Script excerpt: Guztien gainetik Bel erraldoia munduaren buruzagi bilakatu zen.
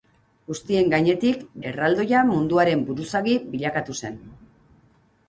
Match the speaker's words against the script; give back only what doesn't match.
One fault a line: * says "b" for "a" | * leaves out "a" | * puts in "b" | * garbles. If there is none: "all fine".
* leaves out "Bel"